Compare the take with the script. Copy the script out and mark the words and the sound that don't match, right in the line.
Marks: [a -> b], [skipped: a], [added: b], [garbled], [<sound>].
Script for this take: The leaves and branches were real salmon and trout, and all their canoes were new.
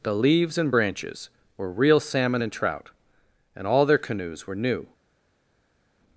The leaves and branches were real salmon and trout, and all their canoes were new.